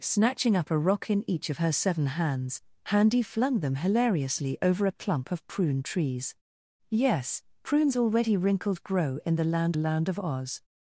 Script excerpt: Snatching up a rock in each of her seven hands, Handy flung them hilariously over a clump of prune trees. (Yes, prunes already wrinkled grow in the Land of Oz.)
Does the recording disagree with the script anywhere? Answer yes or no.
yes